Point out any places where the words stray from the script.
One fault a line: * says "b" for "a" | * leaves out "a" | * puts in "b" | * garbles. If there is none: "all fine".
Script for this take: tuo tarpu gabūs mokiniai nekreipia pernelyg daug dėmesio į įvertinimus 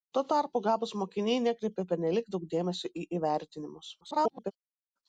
* garbles